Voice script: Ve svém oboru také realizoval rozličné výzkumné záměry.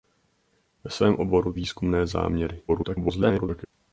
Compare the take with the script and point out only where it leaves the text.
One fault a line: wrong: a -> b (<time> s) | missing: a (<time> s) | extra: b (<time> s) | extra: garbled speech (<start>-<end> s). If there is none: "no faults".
missing: také realizoval rozličné (1.5 s)
extra: garbled speech (2.7-3.7 s)